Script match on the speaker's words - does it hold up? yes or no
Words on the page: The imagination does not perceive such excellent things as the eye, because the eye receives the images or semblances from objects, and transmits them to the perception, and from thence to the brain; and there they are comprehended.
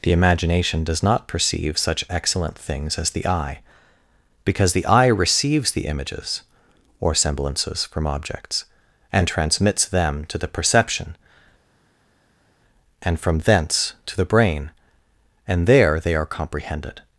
yes